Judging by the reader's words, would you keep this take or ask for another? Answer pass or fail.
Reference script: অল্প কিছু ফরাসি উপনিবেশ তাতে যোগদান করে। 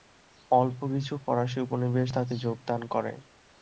pass